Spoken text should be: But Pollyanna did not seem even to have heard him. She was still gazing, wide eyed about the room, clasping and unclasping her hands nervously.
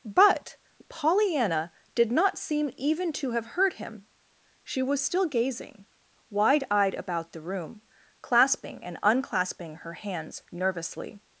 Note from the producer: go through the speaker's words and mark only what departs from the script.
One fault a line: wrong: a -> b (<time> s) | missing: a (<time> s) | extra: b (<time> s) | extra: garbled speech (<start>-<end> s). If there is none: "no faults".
no faults